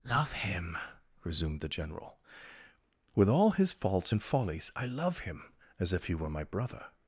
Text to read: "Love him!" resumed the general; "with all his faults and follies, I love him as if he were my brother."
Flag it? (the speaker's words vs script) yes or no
no